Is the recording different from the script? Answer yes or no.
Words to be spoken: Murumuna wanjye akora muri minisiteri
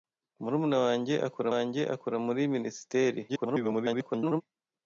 yes